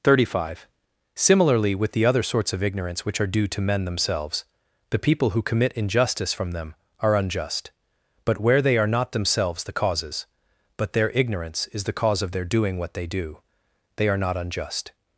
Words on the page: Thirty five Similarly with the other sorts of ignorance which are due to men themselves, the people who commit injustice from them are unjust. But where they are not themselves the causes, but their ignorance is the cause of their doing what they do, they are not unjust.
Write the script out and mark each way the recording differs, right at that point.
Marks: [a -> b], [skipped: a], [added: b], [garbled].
Thirty five Similarly with the other sorts of ignorance which are due to men themselves, the people who commit injustice from them are unjust. But where they are not themselves the causes, but their ignorance is the cause of their doing what they do, they are not unjust.